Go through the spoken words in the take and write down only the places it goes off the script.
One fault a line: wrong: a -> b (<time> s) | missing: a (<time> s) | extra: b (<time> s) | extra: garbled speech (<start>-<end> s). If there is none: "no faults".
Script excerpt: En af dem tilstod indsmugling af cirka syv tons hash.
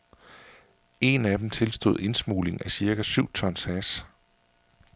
no faults